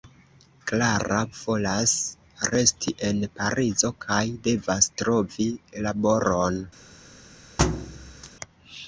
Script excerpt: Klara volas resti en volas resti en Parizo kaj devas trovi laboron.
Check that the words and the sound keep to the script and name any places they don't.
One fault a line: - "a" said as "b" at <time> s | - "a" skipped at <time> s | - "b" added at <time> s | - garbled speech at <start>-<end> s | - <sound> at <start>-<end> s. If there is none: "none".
- "volas resti en" skipped at 3.2 s
- thud at 7.6-8.3 s